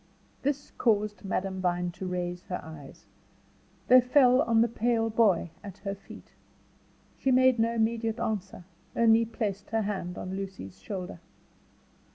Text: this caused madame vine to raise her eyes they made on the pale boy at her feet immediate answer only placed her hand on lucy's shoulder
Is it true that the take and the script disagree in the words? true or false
true